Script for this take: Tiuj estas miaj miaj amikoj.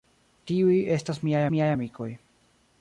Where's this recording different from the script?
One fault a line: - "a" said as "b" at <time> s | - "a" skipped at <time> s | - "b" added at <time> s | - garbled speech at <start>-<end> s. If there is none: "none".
none